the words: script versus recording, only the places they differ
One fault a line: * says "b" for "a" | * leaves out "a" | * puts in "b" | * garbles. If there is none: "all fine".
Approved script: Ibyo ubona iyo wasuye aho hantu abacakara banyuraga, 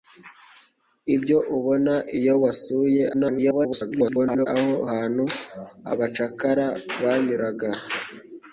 * garbles